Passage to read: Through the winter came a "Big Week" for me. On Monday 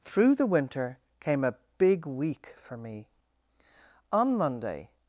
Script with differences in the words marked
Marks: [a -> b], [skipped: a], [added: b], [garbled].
Through the winter came a "Big Week" for me. On Monday